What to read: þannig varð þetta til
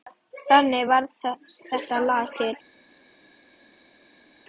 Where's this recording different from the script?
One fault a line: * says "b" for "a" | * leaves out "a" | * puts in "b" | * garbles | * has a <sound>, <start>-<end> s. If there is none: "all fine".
* puts in "lag"